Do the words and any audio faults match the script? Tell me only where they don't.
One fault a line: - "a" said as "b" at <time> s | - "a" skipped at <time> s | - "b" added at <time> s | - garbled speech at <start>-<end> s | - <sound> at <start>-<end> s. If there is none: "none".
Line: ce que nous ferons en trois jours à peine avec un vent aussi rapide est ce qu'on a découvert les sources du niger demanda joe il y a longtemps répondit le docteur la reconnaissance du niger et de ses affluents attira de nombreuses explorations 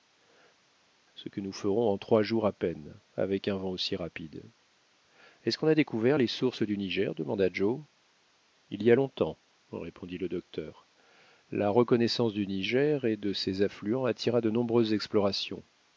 none